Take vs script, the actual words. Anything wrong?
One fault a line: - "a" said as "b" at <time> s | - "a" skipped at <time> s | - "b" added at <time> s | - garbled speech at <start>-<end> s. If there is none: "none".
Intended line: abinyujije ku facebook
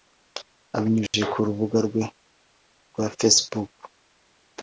- "rubuga rwe rwa" added at 1.5 s